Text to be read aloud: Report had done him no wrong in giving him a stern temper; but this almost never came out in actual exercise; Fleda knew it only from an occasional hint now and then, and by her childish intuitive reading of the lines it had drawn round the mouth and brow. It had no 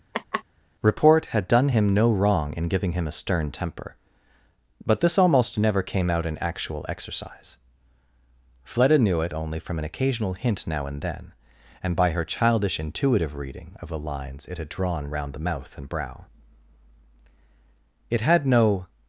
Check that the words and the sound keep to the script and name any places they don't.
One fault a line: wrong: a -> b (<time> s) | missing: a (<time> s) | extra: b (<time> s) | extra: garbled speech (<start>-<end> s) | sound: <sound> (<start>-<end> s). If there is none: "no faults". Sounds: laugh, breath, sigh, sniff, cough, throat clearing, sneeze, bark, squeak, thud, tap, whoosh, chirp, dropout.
sound: laugh (0.1-0.4 s)